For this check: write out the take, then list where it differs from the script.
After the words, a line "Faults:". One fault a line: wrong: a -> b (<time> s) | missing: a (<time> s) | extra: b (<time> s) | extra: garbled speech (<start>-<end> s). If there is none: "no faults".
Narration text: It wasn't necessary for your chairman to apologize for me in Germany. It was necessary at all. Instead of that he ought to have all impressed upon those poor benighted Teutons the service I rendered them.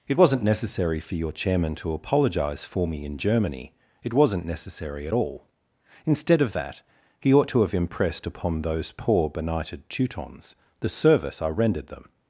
It wasn't necessary for your chairman to apologize for me in Germany. It wasn't necessary at all. Instead of that he ought to have impressed upon those poor benighted Teutons the service I rendered them.
Faults:
wrong: was -> wasn't (4.1 s)
missing: all (7.7 s)